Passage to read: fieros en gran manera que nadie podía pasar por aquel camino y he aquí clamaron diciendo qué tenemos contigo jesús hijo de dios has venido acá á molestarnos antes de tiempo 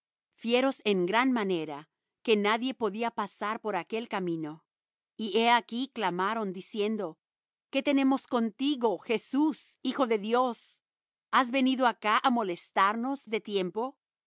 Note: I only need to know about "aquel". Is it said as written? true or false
true